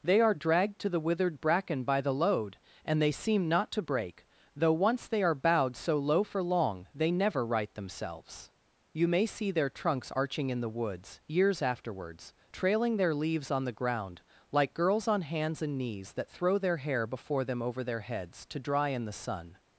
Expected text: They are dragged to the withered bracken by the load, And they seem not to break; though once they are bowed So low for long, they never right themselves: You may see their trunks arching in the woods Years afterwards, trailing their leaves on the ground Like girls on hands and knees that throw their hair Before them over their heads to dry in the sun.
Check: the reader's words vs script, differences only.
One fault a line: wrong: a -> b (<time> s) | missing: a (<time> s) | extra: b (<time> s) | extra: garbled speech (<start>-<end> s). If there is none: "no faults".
no faults